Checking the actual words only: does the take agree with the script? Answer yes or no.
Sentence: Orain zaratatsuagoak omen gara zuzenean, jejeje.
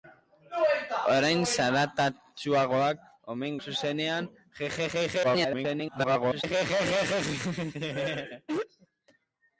no